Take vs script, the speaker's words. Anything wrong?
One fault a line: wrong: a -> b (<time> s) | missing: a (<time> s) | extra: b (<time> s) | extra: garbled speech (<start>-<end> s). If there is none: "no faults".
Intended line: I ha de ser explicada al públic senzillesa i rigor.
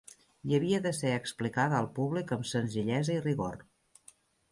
wrong: ha -> havia (0.6 s)
extra: amb (2.4 s)